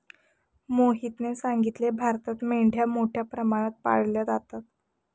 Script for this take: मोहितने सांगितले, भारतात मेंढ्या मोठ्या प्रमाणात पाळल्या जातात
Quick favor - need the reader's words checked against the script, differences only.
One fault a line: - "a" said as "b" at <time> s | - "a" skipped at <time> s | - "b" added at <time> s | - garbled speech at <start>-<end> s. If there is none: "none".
none